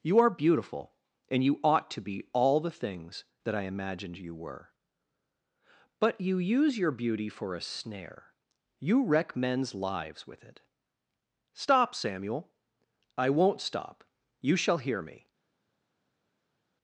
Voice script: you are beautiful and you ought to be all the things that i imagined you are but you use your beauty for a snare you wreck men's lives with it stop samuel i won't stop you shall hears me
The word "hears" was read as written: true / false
false